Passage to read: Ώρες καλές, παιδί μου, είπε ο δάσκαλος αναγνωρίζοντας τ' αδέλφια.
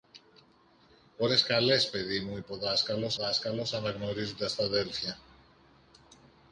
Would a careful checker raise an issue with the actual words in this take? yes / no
yes